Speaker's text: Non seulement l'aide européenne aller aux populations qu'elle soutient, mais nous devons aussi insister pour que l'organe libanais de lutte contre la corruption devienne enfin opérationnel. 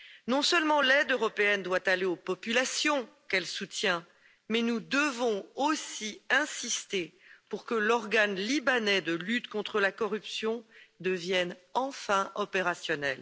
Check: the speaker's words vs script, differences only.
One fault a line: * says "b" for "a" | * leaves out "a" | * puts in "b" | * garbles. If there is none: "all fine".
* puts in "doit"